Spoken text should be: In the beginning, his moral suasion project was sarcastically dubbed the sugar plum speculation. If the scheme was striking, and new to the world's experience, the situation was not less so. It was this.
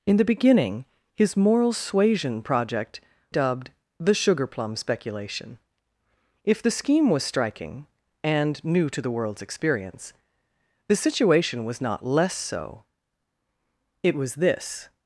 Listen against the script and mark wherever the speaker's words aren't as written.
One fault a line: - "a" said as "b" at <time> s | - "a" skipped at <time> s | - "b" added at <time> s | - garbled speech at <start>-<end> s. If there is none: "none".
- "was sarcastically" skipped at 3.0 s